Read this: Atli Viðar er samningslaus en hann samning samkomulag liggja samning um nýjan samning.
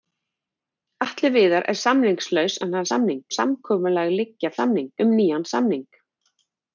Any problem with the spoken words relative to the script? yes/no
no